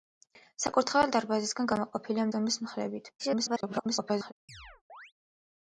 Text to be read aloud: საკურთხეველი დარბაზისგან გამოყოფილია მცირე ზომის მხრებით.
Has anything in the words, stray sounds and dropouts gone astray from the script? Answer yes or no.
yes